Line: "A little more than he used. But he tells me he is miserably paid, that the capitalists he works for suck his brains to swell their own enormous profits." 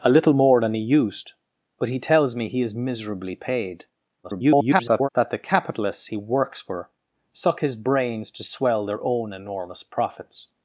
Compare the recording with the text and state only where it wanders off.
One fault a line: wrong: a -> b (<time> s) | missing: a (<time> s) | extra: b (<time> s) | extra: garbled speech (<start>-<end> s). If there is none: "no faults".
extra: garbled speech (4.2-5.1 s)